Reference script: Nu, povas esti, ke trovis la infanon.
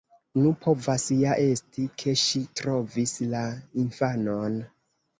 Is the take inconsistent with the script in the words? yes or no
yes